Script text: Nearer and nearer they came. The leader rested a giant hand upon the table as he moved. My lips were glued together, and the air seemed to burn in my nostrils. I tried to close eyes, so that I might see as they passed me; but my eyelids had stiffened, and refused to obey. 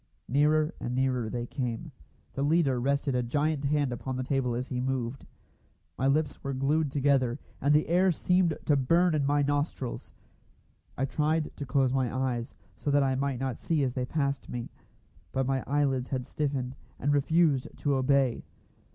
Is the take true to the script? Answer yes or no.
no